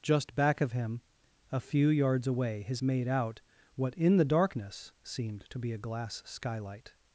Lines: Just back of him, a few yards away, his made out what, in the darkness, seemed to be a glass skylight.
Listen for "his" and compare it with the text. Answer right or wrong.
right